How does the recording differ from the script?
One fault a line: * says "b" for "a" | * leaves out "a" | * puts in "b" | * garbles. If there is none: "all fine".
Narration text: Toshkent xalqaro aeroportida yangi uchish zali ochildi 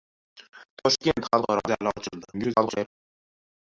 * leaves out "aeroportida yangi uchish"
* garbles